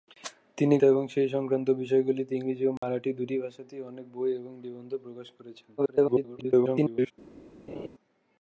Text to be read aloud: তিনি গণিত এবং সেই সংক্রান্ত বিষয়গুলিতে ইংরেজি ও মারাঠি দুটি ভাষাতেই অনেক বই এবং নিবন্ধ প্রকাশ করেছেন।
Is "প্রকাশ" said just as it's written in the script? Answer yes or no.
yes